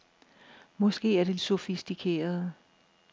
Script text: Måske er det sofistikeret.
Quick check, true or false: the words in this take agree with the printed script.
true